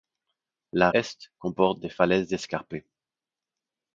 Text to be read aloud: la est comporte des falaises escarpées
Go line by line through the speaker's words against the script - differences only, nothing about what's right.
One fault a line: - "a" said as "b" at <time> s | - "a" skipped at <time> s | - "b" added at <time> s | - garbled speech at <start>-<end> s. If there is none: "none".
none